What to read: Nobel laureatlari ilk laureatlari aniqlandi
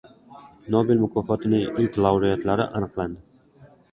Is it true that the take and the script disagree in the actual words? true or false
true